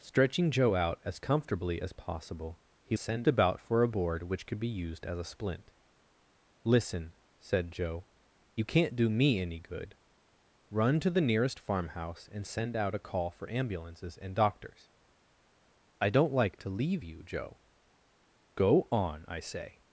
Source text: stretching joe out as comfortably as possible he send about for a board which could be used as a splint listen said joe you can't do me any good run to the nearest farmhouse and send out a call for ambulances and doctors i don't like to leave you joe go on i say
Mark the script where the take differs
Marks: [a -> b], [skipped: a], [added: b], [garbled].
stretching joe out as comfortably as possible he send about for a board which could be used as a splint listen said joe you can't do me any good run to the nearest farmhouse and send out a call for ambulances and doctors i don't like to leave you joe go on i say